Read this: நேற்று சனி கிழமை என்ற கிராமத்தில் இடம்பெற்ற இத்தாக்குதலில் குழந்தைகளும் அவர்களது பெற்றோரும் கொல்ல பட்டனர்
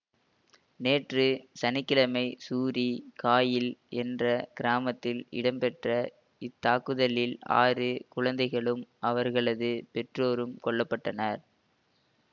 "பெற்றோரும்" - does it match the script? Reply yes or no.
yes